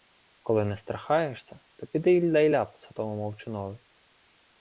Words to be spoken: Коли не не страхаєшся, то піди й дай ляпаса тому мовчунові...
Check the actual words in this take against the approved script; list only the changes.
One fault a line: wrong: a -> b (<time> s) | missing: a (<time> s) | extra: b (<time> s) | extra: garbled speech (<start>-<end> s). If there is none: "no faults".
missing: не (0.8 s)